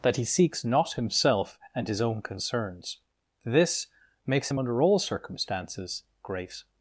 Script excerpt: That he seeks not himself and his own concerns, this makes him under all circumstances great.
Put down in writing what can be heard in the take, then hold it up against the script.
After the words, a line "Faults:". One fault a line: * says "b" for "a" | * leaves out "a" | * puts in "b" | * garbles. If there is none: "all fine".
That he seeks not himself and his own concerns, this makes him under all circumstances great.
Faults:
all fine